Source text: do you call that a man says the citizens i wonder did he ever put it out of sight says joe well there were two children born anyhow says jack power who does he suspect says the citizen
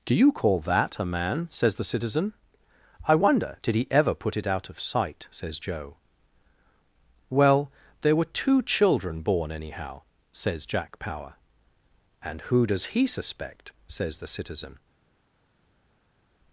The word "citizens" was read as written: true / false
false